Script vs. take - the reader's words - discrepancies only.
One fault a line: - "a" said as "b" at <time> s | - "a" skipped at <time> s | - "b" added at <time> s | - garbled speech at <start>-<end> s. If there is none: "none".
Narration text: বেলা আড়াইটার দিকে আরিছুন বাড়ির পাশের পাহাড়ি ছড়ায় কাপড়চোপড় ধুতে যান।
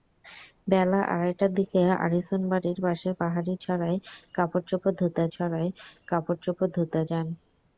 - "ছড়ায় কাপড়চোপড় ধুতে" added at 5.3 s